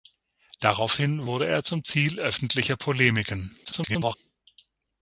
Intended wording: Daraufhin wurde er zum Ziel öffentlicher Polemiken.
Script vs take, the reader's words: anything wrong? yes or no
yes